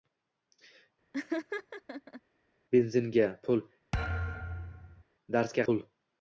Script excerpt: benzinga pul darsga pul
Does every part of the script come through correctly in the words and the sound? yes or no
no